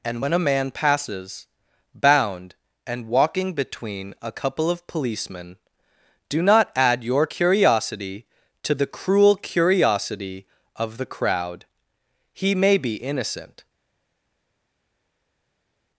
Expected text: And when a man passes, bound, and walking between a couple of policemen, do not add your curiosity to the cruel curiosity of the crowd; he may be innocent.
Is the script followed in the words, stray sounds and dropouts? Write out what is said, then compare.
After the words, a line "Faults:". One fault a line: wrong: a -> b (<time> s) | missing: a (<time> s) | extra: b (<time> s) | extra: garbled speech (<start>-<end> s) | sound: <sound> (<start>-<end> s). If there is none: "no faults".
And when a man passes, bound, and walking between a couple of policemen, do not add your curiosity to the cruel curiosity of the crowd; he may be innocent.
Faults:
no faults